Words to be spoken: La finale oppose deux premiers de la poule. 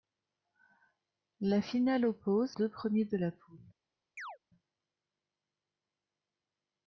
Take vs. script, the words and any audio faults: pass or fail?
fail